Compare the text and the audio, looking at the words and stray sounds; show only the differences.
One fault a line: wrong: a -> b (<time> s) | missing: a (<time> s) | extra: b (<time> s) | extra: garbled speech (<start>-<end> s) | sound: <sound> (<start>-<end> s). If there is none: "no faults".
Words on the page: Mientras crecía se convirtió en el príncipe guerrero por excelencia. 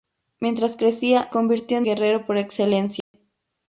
missing: se (1.3 s)
missing: el príncipe (1.9 s)
sound: dropout (3.0-3.1 s)